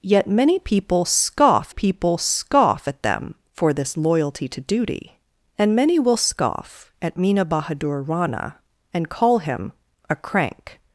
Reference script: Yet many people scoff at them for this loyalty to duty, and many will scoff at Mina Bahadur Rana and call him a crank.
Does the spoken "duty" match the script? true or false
true